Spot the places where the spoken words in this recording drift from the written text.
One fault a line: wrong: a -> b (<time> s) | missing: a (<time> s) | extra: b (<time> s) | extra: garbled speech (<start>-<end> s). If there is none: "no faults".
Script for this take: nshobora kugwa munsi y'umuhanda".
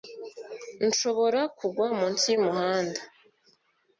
no faults